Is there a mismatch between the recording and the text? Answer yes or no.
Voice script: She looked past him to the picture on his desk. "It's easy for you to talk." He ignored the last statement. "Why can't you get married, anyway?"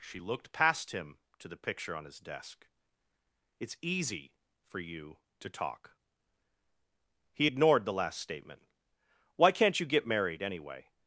no